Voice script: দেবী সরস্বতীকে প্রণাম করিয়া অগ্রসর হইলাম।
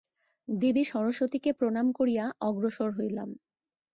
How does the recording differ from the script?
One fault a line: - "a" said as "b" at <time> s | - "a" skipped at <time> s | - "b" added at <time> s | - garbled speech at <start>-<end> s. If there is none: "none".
none